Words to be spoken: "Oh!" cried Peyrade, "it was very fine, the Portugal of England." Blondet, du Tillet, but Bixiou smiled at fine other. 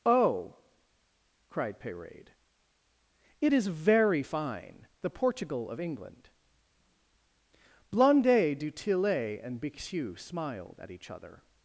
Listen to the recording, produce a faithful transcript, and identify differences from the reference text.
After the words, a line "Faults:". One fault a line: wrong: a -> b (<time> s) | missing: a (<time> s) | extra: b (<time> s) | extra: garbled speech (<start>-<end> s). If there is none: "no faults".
"Oh!" cried Peyrade, "it is very fine, the Portugal of England." Blondet, du Tillet, and Bixiou smiled at each other.
Faults:
wrong: was -> is (3.5 s)
wrong: but -> and (9.4 s)
wrong: fine -> each (10.9 s)